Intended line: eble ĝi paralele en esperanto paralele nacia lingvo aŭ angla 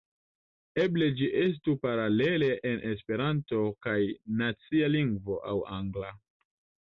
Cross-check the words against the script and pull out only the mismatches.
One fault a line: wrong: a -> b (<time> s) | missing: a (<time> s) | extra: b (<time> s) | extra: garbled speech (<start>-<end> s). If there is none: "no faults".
extra: estu (1.4 s)
wrong: paralele -> kaj (3.9 s)